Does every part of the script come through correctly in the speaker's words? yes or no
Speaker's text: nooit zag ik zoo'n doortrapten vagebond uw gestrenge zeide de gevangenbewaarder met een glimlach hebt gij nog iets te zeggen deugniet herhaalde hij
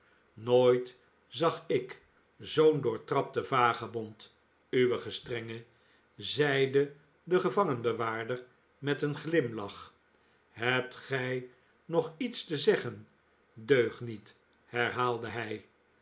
yes